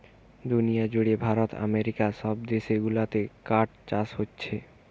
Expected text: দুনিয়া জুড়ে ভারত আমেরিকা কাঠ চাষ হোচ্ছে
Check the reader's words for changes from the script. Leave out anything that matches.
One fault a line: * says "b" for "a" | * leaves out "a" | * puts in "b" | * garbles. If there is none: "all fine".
* puts in "সব দেশ গুলাতে"